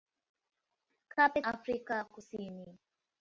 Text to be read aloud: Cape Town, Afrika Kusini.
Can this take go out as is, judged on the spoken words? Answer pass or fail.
fail